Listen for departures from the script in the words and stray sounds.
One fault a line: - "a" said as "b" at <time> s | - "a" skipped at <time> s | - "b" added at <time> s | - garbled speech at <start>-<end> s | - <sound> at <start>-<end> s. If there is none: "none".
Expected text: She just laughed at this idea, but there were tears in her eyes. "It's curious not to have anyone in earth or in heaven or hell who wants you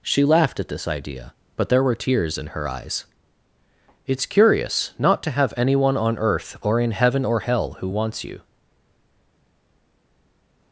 - "just" skipped at 0.2 s
- "in" said as "on" at 6.0 s